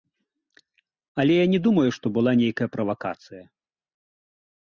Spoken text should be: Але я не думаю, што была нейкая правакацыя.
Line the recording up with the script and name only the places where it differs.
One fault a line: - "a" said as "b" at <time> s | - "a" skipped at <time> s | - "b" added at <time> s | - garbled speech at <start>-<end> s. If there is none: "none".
none